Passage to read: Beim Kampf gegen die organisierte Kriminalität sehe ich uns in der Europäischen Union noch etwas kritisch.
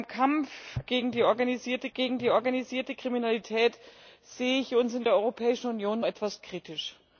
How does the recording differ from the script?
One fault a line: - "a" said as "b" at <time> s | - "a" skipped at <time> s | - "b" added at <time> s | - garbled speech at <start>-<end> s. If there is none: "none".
- "gegen die organisierte" added at 1.9 s
- "noch" skipped at 6.0 s